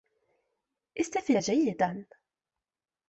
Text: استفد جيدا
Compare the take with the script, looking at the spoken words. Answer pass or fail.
pass